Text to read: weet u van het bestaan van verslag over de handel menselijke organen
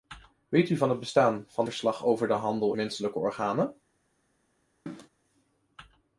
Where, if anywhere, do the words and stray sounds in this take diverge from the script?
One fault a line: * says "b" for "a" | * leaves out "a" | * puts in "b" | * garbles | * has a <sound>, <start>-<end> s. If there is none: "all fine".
* has a cough, 4.9-5.1 s